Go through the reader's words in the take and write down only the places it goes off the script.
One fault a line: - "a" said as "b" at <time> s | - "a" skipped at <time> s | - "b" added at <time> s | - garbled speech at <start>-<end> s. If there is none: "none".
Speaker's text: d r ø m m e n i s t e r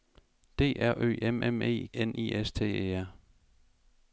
none